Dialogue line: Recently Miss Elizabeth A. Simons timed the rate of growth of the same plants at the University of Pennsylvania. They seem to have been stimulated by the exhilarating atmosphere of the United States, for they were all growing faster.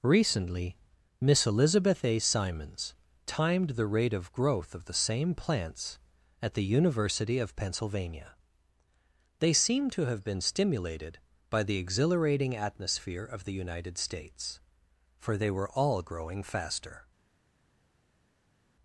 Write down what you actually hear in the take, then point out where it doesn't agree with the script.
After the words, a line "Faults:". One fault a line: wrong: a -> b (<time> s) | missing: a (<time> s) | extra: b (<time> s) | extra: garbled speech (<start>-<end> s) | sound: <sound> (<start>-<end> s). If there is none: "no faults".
Recently Miss Elizabeth A. Simons timed the rate of growth of the same plants at the University of Pennsylvania. They seem to have been stimulated by the exhilarating atmosphere of the United States, for they were all growing faster.
Faults:
no faults